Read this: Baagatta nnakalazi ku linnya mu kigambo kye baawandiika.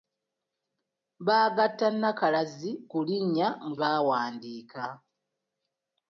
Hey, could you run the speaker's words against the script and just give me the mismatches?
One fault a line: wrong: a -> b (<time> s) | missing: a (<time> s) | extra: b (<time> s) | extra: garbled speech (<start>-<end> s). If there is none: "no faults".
missing: kigambo kye (3.8 s)